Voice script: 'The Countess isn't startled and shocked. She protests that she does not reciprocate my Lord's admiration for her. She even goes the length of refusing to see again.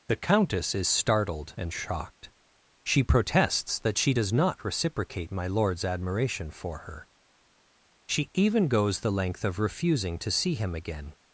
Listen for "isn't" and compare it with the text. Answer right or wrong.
wrong